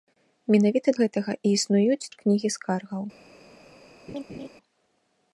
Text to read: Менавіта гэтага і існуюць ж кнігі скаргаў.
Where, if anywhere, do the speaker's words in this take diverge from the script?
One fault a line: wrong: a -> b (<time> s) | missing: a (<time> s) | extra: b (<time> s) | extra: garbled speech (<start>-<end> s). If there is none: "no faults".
no faults